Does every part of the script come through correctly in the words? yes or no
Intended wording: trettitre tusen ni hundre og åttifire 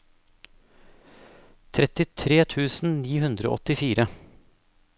yes